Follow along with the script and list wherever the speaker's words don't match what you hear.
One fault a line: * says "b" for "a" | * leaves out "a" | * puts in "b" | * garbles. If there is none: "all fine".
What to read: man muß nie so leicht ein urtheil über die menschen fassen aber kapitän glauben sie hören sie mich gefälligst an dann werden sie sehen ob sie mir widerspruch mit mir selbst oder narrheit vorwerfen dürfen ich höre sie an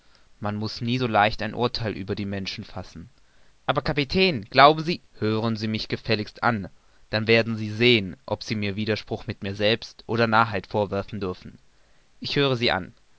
all fine